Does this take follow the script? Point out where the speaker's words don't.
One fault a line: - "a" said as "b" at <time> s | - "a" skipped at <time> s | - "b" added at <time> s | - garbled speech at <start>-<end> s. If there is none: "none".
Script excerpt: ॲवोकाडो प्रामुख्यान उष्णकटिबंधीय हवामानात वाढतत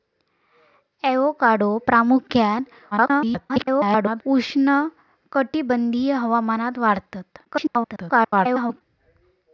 - garbled speech at 2.9-4.2 s
- garbled speech at 7.4-8.8 s